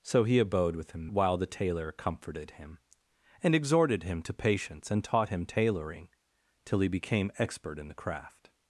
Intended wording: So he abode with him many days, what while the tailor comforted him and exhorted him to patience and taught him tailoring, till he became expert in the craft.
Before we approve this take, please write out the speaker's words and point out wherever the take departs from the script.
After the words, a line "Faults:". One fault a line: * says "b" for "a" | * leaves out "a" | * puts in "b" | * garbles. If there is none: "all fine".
So he abode with him while the tailor comforted him and exhorted him to patience and taught him tailoring, till he became expert in the craft.
Faults:
* leaves out "many days what"